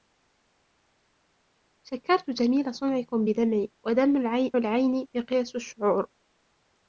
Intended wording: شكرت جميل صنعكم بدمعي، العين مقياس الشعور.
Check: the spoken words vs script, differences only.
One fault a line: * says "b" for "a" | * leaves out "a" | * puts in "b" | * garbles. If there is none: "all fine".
all fine